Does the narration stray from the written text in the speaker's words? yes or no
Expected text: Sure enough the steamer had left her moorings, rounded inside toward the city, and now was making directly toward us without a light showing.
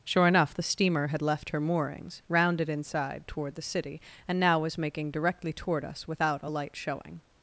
no